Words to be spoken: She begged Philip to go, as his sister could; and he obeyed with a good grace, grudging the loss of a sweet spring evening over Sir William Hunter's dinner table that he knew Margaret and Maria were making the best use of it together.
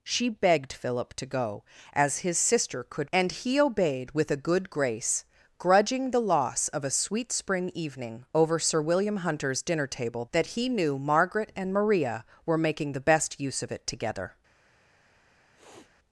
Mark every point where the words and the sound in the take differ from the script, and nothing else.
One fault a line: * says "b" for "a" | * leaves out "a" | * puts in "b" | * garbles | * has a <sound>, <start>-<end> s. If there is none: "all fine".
* has a sniff, 15.5-15.9 s